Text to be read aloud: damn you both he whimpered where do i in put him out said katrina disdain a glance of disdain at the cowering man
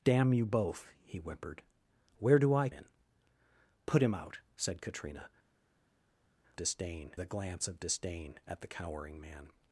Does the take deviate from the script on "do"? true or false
false